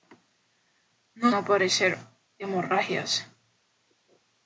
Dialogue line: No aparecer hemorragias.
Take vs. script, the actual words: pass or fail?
pass